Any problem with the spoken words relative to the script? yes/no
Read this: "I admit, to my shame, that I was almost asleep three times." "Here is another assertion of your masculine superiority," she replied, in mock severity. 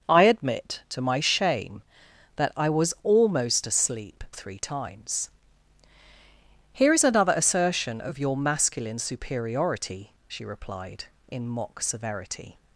no